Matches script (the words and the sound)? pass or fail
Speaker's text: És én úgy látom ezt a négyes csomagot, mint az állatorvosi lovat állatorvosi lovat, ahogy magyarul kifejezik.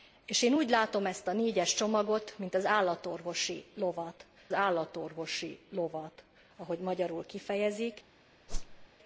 fail